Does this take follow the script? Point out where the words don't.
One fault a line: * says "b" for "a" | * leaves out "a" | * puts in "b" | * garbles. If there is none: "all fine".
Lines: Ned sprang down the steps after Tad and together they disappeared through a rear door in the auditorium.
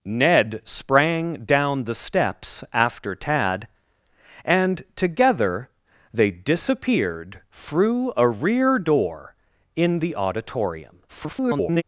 * garbles